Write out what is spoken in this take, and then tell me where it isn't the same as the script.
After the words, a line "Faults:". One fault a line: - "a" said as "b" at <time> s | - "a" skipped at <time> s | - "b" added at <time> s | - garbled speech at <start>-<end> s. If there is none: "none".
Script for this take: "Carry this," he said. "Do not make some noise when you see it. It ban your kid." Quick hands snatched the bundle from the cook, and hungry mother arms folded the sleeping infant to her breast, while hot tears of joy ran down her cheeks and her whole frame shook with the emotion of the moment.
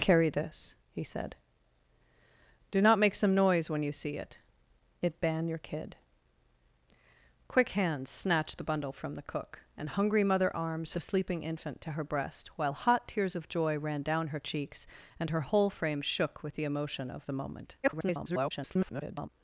"Carry this," he said. "Do not make some noise when you see it. It ban your kid." Quick hands snatched the bundle from the cook, and hungry mother arms the sleeping infant to her breast, while hot tears of joy ran down her cheeks and her whole frame shook with the emotion of the moment. [garbled]
Faults:
- "folded" skipped at 10.9 s
- garbled speech at 17.8-19.3 s